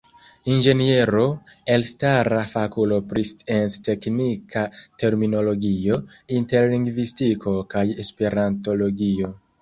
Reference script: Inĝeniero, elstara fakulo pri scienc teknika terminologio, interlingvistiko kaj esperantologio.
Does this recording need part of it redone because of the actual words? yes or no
no